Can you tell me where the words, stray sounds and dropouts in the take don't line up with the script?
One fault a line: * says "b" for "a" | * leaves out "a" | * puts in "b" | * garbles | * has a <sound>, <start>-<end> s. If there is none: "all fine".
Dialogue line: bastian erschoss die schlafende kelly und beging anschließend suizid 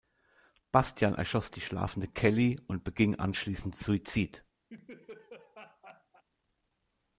* has a laugh, 4.7-6.2 s